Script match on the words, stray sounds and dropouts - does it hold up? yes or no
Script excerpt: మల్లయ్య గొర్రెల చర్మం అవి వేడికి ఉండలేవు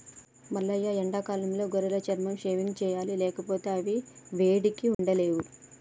no